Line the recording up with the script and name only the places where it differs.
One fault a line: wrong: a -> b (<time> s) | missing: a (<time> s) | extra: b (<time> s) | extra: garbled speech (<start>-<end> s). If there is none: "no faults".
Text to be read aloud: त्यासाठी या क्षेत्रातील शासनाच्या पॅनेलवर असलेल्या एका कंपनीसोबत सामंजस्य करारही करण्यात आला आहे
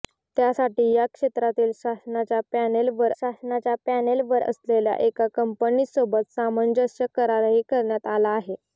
extra: शासनाच्या पॅनेलवर (3.1 s)